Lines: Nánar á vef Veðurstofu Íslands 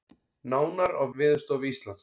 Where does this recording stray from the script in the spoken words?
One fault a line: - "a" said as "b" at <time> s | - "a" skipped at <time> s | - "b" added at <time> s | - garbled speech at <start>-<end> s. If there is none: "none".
- "vef" skipped at 1.0 s